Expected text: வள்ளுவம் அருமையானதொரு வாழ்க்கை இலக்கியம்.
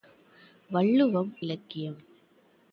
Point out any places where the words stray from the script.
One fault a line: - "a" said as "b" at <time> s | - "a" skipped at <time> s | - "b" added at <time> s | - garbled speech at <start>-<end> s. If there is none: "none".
- "அருமையானதொரு வாழ்க்கை" skipped at 1.4 s